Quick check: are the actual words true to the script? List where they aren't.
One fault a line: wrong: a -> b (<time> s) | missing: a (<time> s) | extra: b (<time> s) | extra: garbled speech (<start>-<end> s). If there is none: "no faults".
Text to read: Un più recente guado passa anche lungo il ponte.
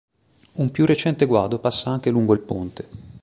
no faults